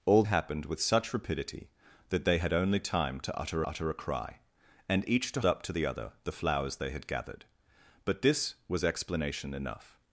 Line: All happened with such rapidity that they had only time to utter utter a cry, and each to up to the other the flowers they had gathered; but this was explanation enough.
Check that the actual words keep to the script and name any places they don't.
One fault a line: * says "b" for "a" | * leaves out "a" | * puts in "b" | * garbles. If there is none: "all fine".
all fine